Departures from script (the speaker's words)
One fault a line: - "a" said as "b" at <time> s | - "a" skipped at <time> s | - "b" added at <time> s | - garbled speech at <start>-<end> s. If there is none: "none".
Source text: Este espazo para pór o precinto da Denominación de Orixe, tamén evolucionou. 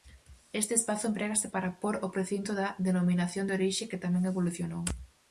- "emprégase" added at 1.1 s
- "que" added at 3.9 s